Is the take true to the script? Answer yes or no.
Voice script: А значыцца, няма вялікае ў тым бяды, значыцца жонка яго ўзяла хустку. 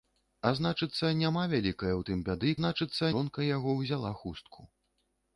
yes